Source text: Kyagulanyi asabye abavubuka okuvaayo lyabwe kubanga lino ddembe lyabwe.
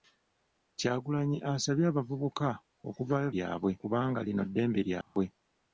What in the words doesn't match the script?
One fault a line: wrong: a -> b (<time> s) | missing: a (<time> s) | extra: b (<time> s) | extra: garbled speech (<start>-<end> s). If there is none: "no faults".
no faults